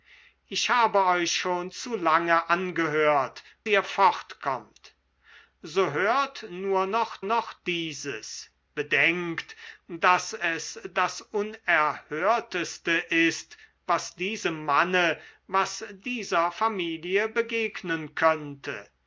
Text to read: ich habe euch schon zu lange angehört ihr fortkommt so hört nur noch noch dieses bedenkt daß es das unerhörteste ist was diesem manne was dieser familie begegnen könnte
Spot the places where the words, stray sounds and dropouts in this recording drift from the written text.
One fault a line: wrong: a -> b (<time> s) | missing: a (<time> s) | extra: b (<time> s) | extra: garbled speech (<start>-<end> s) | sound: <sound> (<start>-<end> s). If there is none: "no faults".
no faults